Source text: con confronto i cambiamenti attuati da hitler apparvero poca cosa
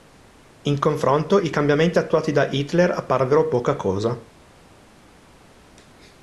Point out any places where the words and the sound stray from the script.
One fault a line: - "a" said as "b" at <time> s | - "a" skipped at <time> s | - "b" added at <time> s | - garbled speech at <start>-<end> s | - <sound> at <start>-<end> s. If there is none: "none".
- "con" said as "in" at 0.6 s